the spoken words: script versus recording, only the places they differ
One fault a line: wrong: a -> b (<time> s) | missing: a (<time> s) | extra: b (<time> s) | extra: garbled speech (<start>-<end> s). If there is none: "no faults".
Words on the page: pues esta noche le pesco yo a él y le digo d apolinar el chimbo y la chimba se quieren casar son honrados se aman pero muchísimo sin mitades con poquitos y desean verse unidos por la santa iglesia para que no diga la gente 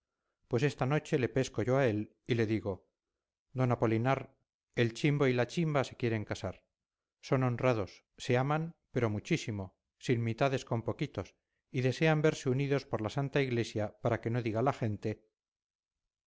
no faults